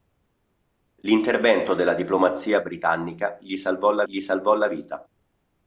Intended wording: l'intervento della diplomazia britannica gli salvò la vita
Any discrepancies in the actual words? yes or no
yes